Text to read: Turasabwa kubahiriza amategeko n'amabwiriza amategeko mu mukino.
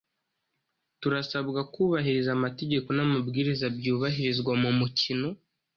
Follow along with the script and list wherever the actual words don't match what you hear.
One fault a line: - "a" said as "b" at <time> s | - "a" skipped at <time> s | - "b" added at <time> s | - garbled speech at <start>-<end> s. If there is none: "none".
- "amategeko" said as "byubahirizwa" at 3.8 s